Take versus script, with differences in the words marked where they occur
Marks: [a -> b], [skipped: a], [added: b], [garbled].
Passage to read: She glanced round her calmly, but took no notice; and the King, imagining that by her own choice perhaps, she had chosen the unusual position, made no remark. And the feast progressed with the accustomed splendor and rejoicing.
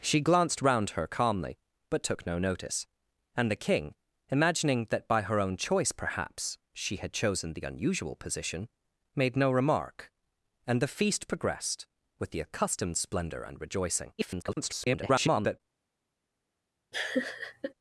She glanced round her calmly, but took no notice; and the King, imagining that by her own choice perhaps, she had chosen the unusual position, made no remark. And the feast progressed with the accustomed splendor and rejoicing. [garbled]